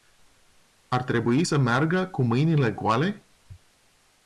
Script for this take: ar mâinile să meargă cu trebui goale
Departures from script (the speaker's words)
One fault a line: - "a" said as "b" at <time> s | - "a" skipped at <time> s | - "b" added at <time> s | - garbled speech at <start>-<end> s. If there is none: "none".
- "mâinile" said as "trebui" at 1.0 s
- "trebui" said as "mâinile" at 2.2 s